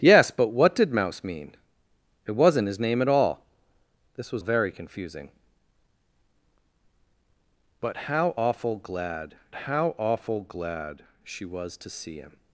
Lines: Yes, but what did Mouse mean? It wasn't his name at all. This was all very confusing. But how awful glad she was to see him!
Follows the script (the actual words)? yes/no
no